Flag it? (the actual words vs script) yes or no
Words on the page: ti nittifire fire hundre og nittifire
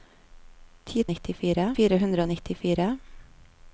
no